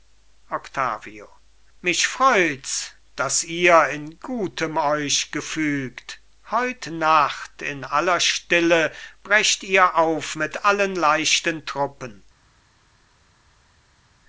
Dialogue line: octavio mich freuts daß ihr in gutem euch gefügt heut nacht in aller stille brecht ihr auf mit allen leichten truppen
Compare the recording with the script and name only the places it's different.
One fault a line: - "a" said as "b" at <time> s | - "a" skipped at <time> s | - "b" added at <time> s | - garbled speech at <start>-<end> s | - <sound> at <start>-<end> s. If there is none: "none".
none